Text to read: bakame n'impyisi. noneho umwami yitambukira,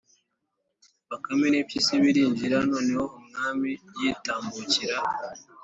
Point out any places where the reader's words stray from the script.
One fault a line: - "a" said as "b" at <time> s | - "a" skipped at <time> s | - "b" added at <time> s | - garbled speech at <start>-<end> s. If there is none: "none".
- "birinjira" added at 2.0 s